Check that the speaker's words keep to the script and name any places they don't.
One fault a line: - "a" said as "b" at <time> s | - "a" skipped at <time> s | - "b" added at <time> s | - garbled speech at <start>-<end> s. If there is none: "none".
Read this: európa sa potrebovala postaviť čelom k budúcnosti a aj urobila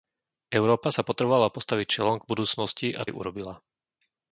none